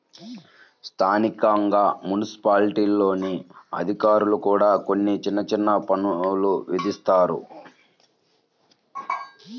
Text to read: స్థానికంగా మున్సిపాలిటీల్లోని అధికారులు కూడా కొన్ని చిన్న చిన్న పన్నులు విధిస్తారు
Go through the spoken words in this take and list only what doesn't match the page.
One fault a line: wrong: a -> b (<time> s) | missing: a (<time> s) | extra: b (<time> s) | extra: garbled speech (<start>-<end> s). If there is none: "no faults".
no faults